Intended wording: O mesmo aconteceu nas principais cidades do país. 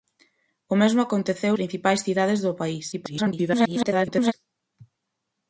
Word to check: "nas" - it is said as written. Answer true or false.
false